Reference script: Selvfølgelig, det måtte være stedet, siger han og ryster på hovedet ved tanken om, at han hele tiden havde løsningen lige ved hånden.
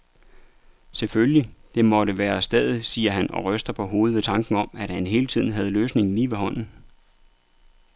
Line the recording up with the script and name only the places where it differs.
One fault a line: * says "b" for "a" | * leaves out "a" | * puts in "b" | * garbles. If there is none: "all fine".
all fine